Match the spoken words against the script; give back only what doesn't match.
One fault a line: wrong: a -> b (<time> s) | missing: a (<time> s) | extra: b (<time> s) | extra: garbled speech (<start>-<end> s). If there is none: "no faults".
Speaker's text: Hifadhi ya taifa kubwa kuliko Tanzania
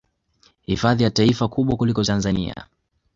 no faults